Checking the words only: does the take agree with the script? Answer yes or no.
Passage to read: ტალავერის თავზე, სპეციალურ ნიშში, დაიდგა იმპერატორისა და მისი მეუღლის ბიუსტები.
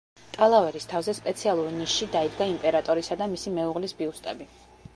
yes